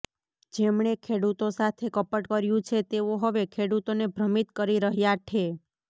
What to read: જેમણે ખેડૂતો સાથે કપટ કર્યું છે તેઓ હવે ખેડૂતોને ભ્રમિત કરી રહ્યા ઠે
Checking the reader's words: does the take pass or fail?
pass